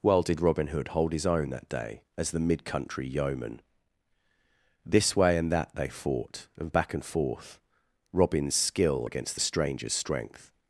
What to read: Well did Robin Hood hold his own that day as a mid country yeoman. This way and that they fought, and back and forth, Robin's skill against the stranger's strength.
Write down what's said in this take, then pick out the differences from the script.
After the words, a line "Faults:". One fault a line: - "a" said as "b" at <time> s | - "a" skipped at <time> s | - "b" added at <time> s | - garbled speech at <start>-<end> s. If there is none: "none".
Well did Robin Hood hold his own that day as the mid country yeoman. This way and that they fought, and back and forth, Robin's skill against the stranger's strength.
Faults:
- "a" said as "the" at 2.3 s